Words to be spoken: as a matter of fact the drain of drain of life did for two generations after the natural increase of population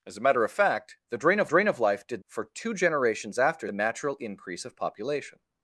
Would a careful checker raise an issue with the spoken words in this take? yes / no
no